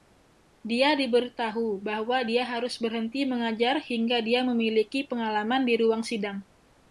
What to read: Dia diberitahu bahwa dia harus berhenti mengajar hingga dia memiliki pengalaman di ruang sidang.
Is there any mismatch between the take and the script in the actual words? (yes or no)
no